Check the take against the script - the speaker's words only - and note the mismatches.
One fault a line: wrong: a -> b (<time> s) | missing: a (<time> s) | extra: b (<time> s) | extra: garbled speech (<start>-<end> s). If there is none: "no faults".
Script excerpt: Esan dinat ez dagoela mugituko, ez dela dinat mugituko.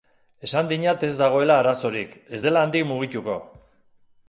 wrong: mugituko -> arazorik (1.6 s)
wrong: dinat -> handik (2.7 s)